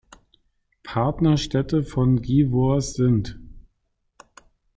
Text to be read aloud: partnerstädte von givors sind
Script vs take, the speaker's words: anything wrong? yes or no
no